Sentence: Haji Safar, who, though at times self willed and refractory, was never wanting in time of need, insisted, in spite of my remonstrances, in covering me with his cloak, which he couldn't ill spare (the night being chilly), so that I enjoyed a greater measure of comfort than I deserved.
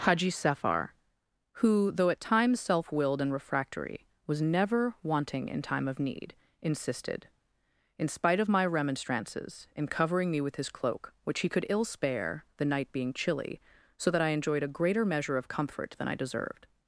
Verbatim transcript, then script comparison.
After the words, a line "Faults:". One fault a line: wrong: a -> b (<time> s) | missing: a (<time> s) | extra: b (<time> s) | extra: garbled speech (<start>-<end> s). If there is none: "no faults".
Haji Safar, who, though at times self willed and refractory, was never wanting in time of need, insisted, in spite of my remonstrances, in covering me with his cloak, which he could ill spare (the night being chilly), so that I enjoyed a greater measure of comfort than I deserved.
Faults:
wrong: couldn't -> could (11.5 s)